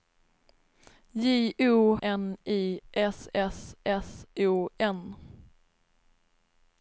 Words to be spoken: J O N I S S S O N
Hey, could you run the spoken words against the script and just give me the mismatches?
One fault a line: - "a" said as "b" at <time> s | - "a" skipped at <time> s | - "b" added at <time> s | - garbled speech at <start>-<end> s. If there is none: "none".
none